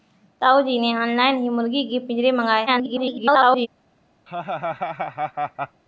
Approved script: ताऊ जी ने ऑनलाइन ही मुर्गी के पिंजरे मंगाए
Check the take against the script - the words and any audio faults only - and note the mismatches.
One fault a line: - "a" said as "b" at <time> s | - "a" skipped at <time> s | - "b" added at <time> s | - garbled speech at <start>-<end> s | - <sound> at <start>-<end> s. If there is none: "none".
- garbled speech at 2.7-3.7 s
- laugh at 4.3-5.8 s